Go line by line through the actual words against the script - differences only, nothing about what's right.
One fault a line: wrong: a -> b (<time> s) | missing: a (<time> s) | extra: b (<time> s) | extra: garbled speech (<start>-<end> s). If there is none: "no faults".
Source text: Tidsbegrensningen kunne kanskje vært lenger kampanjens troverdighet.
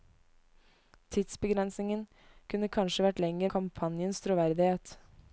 no faults